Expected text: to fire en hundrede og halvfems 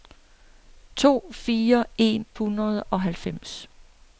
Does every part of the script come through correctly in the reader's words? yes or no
yes